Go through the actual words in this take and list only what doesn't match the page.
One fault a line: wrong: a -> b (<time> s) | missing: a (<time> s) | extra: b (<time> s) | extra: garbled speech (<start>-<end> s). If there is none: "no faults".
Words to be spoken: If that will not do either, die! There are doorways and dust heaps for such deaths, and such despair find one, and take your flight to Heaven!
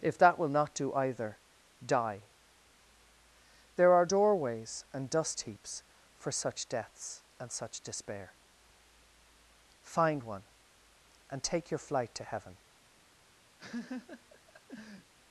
no faults